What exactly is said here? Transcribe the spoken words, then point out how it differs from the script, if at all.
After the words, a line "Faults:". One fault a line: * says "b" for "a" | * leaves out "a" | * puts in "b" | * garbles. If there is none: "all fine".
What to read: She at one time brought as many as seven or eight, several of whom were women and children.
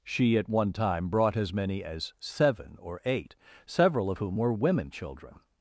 She at one time brought as many as seven or eight, several of whom were women children.
Faults:
* leaves out "and"